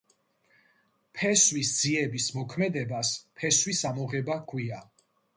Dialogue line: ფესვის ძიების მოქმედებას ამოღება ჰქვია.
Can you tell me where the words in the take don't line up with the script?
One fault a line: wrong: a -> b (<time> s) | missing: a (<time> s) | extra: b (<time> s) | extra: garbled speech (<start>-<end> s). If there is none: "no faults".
extra: ფესვის (3.4 s)